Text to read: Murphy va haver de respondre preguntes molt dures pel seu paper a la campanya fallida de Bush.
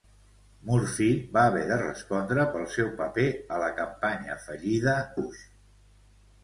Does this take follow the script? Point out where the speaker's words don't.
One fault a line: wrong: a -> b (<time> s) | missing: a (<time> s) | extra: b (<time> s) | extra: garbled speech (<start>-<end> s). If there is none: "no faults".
missing: preguntes molt dures (2.5 s)
missing: de (5.0 s)